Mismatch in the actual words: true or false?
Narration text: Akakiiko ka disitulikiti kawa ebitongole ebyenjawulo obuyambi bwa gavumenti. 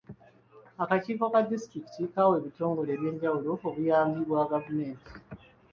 false